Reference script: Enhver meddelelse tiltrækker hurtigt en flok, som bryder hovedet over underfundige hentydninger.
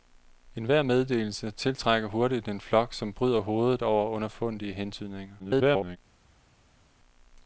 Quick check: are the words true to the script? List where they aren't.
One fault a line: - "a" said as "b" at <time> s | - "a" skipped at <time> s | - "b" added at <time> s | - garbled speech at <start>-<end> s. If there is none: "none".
- garbled speech at 5.4-6.0 s